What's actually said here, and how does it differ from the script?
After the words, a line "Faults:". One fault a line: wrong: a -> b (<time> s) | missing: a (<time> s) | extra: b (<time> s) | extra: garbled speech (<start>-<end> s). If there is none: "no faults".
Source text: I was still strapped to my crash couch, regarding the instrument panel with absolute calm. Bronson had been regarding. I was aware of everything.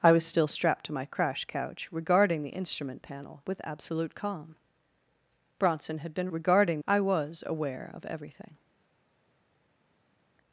I was still strapped to my crash couch, regarding the instrument panel with absolute calm. Bronson had been regarding. I was aware of everything.
Faults:
no faults